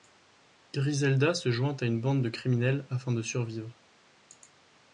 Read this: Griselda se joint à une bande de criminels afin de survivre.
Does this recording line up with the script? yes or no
yes